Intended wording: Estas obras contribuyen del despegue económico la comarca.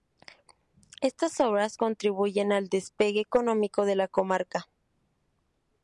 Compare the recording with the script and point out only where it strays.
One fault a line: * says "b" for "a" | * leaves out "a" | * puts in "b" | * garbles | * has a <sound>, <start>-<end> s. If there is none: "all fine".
* says "al" for "del"
* puts in "de"